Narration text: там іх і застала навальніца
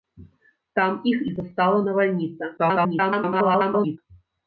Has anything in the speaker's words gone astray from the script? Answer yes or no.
yes